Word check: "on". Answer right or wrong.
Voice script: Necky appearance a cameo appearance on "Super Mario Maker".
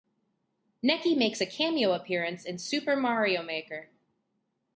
wrong